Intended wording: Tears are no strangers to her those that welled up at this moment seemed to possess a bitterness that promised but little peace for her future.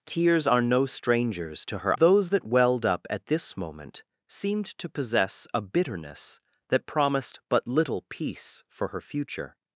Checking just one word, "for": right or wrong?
right